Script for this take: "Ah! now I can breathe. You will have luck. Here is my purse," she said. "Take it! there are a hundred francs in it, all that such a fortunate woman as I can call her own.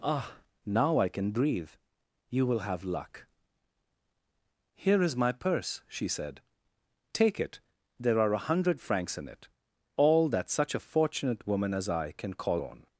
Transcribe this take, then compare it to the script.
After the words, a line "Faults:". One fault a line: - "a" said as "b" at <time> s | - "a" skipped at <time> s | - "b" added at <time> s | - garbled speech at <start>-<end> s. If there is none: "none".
"Ah! now I can breathe. You will have luck. Here is my purse," she said. "Take it! there are a hundred francs in it, all that such a fortunate woman as I can call own.
Faults:
- "her" skipped at 12.6 s